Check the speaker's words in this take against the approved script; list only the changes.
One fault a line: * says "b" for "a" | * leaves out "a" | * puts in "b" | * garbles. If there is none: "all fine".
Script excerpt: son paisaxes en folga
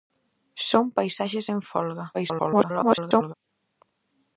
* garbles